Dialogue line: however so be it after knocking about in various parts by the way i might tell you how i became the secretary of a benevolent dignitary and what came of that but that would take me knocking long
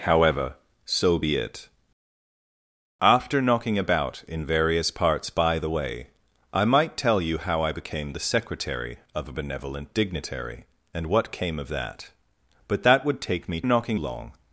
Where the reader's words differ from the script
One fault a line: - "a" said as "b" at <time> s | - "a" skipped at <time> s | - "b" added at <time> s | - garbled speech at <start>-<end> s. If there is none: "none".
none